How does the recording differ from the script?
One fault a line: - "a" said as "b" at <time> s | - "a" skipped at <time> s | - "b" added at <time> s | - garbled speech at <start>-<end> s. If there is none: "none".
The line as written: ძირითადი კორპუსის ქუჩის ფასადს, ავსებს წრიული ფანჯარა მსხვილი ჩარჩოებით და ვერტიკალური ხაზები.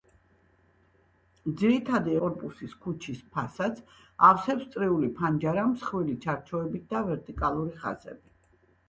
none